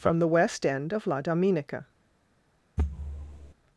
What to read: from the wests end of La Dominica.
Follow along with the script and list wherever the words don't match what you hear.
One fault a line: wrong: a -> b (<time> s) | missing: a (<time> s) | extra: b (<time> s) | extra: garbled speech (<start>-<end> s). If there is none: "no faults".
wrong: wests -> west (0.3 s)